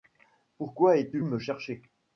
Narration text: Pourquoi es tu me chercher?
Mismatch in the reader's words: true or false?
false